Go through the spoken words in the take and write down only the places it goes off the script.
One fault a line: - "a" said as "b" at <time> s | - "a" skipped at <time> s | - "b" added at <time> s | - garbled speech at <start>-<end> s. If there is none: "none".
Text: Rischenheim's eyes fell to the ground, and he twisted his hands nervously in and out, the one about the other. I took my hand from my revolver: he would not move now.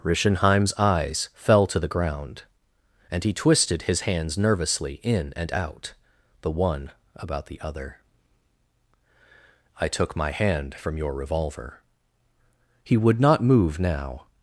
- "my" said as "your" at 11.0 s